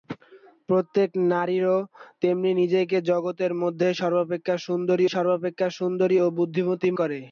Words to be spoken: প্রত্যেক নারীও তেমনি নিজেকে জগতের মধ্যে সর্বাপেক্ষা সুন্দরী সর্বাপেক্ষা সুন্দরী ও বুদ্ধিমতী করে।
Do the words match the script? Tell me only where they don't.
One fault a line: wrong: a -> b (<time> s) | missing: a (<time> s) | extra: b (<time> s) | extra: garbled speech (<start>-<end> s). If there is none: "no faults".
no faults